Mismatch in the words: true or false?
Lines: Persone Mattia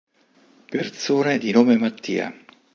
true